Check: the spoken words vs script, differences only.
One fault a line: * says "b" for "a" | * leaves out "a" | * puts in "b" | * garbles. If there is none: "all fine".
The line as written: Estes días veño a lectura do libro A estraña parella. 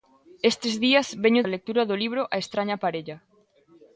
all fine